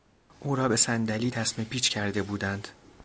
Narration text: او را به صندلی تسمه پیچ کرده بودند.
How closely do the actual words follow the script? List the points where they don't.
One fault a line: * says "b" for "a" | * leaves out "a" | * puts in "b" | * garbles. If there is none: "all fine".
all fine